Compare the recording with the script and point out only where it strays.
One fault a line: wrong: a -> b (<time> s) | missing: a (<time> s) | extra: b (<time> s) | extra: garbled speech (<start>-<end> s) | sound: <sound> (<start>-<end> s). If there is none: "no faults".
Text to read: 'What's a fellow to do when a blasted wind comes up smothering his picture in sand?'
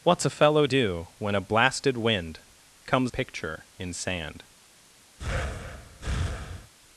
missing: to (0.7 s)
missing: up smothering his (3.1 s)
sound: breath (5.2-6.7 s)